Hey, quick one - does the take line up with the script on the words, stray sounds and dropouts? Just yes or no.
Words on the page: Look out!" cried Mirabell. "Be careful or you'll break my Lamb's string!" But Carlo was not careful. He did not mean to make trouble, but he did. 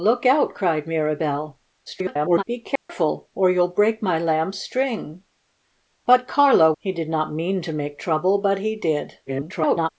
no